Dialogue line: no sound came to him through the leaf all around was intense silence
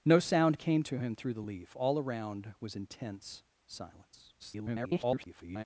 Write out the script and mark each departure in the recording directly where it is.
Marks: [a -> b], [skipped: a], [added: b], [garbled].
no sound came to him through the leaf all around was intense silence [garbled]